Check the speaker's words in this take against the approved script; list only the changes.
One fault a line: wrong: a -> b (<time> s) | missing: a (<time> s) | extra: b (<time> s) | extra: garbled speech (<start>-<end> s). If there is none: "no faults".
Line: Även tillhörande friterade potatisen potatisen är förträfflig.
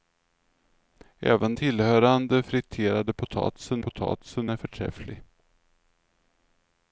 no faults